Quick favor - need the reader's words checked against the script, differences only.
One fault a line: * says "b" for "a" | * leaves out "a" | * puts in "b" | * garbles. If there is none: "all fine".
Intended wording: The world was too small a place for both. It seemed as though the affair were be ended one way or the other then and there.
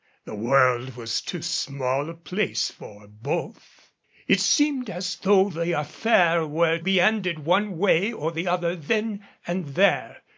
all fine